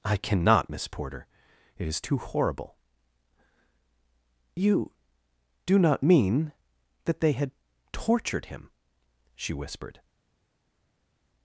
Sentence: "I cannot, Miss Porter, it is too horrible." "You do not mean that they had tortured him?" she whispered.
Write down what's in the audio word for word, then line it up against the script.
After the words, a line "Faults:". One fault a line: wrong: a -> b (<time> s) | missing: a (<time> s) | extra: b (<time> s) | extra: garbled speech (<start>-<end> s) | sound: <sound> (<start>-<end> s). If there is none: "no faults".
"I cannot, Miss Porter, it is too horrible." "You do not mean that they had tortured him?" she whispered.
Faults:
no faults